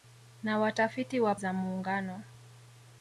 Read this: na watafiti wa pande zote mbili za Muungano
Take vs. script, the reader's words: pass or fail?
fail